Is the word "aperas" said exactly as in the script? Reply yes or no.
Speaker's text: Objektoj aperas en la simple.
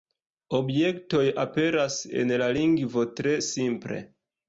yes